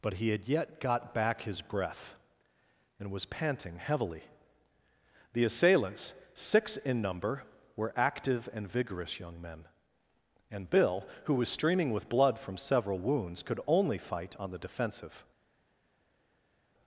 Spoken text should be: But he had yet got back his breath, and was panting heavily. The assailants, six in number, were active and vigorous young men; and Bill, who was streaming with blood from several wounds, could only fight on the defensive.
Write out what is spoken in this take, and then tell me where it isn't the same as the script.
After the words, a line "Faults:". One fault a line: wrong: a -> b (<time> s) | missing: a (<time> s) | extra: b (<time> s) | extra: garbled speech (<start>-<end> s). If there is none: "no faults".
But he had yet got back his breath, and was panting heavily. The assailants, six in number, were active and vigorous young men; and Bill, who was streaming with blood from several wounds, could only fight on the defensive.
Faults:
no faults